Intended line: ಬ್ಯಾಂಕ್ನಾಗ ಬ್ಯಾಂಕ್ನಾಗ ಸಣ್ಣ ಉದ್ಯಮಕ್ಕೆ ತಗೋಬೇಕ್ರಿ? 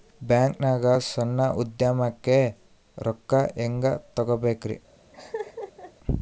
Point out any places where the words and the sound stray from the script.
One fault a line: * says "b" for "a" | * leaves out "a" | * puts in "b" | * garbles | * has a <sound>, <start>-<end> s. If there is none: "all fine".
* leaves out "ಬ್ಯಾಂಕ್ನಾಗ"
* puts in "ರೊಕ್ಕ ಹೆಂಗೆ"
* has a laugh, 5.1-5.9 s